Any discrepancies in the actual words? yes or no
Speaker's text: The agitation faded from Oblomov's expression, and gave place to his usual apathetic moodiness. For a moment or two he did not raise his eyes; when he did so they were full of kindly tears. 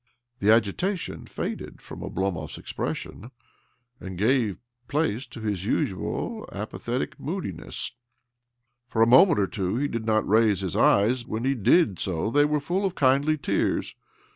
no